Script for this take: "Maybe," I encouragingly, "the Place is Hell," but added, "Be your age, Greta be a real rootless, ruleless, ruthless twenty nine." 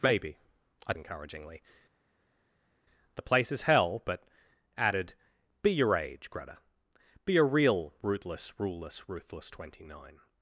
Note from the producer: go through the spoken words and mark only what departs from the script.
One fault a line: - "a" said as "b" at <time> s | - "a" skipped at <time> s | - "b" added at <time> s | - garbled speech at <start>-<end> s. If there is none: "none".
none